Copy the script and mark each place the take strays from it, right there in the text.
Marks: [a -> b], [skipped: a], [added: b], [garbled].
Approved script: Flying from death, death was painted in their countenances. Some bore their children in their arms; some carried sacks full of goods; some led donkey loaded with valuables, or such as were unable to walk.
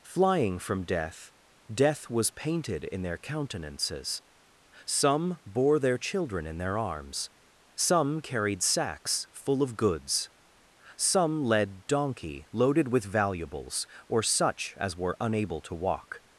Flying from death, death was painted in their countenances. Some bore their children in their arms; some carried sacks full of goods; some led donkey loaded with valuables, or such as were unable to walk.